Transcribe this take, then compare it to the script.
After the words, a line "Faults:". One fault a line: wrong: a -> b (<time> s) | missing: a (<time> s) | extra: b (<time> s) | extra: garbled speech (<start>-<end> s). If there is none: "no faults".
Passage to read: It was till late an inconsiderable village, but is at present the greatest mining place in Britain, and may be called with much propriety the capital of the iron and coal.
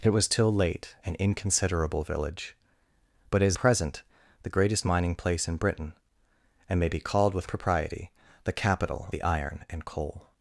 It was till late an inconsiderable village, but is present the greatest mining place in Britain, and may be called with propriety the capital the iron and coal.
Faults:
missing: at (3.6 s)
missing: much (7.5 s)
missing: of (9.1 s)